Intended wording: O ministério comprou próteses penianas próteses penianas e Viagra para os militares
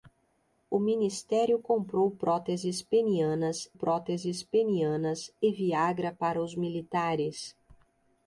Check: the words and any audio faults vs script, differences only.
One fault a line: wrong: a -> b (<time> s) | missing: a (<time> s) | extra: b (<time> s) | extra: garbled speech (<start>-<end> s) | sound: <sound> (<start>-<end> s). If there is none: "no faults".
no faults